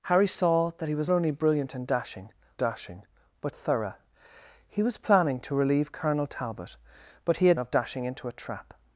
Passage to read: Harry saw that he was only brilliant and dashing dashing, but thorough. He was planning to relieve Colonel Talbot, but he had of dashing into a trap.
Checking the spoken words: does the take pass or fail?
pass